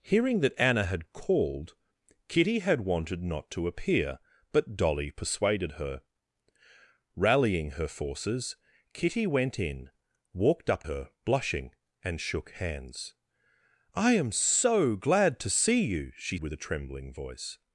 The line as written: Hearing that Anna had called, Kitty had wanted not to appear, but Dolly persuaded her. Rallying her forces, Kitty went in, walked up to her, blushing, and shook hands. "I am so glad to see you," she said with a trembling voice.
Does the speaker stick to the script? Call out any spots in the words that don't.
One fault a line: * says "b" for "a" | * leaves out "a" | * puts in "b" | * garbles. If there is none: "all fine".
* leaves out "to"
* leaves out "said"